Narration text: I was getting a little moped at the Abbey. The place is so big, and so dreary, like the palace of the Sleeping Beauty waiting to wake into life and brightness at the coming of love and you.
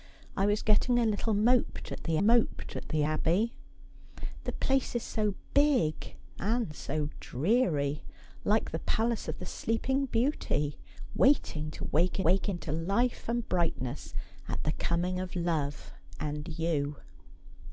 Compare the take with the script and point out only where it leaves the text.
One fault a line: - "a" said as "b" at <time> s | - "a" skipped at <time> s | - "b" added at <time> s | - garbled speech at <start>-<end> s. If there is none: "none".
- "moped at the" added at 2.2 s
- "wake" added at 12.2 s